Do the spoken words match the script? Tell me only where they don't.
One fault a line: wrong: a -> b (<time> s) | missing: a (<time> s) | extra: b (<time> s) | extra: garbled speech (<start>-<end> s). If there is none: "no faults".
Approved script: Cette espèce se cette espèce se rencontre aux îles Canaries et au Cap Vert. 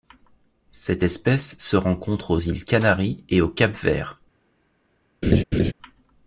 missing: cette espèce se (1.8 s)